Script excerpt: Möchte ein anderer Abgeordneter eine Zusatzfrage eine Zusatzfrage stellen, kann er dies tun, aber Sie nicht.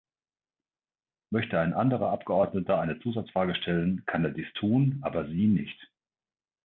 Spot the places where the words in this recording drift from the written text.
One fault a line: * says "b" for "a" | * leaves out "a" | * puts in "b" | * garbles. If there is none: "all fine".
* leaves out "eine Zusatzfrage"